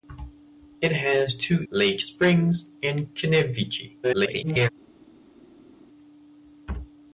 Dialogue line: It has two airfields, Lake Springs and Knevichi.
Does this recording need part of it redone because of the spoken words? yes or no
yes